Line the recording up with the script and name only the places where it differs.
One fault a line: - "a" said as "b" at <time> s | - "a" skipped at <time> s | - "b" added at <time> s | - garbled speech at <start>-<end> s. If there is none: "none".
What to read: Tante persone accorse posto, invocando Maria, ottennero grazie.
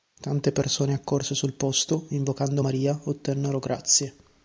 - "sul" added at 1.4 s